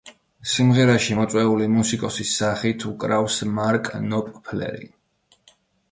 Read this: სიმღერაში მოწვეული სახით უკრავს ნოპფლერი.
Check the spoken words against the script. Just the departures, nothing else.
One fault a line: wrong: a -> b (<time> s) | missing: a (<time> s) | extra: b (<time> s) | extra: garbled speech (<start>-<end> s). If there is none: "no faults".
extra: მუსიკოსის (1.7 s)
extra: მარკ (3.6 s)